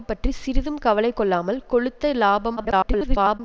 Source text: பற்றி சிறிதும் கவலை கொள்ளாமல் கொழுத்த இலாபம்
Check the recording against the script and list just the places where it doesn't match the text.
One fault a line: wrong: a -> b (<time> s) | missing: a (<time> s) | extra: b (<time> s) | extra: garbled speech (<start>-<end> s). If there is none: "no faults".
extra: garbled speech (2.6-3.4 s)